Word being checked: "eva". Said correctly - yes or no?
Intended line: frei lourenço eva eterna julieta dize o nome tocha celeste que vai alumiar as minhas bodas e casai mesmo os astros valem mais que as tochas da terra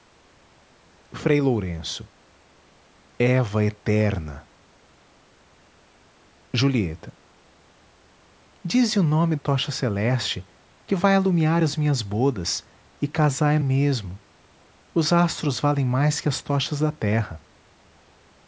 yes